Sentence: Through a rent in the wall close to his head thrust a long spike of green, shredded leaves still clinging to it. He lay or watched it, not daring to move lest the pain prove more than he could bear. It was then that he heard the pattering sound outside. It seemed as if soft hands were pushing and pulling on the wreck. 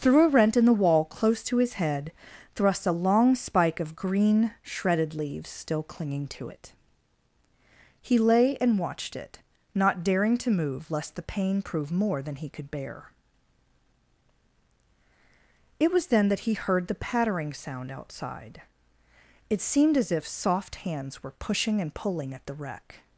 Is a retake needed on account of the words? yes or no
yes